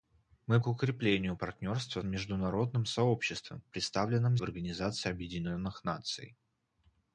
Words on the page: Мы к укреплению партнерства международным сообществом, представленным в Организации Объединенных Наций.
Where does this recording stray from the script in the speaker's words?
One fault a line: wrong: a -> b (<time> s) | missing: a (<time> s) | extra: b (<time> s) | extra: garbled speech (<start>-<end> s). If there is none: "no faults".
no faults